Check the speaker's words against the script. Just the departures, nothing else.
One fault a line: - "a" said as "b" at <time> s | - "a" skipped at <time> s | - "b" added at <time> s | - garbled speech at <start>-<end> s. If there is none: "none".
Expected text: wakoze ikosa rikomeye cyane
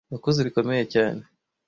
- "ikosa" skipped at 0.4 s